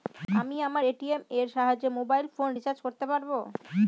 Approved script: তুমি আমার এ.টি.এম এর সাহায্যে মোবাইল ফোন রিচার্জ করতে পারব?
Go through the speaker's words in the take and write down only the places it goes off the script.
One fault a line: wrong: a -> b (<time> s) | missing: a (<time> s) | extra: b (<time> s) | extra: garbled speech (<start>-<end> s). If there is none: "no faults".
wrong: তুমি -> আমি (0.4 s)